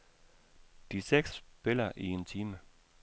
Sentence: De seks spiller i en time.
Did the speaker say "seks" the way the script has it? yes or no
yes